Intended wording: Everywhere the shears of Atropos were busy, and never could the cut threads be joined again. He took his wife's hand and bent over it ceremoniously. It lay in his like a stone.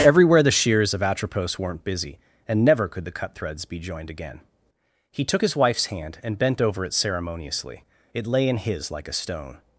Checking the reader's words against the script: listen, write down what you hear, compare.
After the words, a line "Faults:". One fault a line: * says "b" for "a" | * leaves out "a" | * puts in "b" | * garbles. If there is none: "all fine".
Everywhere the shears of Atropos weren't busy, and never could the cut threads be joined again. He took his wife's hand and bent over it ceremoniously. It lay in his like a stone.
Faults:
* says "weren't" for "were"